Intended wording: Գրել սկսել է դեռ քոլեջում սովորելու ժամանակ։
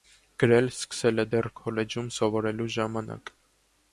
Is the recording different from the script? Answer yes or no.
no